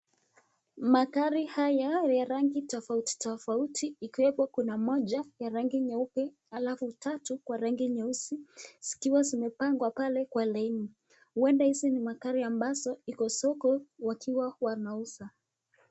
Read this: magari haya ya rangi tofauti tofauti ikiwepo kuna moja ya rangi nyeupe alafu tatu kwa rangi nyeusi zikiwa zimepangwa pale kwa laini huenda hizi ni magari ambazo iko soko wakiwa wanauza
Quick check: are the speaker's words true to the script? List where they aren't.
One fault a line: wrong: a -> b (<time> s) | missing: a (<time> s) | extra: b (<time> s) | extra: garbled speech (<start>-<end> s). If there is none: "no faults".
no faults